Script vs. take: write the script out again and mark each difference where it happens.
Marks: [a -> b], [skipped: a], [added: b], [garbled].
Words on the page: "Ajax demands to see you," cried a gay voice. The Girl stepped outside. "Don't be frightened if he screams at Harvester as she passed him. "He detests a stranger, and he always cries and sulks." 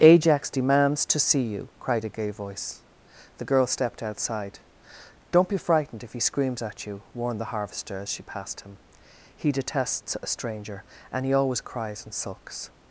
"Ajax demands to see you," cried a gay voice. The Girl stepped outside. "Don't be frightened if he screams at [added: you warned the] Harvester as she passed him. "He detests a stranger, and he always cries and sulks."